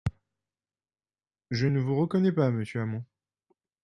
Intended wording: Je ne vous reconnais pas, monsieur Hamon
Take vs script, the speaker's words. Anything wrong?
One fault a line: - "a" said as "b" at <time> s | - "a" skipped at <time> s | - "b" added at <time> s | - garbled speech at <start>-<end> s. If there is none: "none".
none